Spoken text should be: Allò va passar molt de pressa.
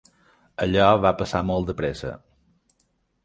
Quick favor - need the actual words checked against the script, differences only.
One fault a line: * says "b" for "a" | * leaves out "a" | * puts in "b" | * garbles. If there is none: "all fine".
all fine